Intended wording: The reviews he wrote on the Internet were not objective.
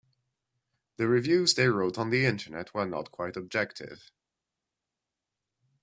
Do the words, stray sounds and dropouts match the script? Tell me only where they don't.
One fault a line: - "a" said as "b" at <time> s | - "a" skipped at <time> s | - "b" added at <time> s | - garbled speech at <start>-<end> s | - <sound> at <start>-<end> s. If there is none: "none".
- "he" said as "they" at 1.5 s
- "quite" added at 3.1 s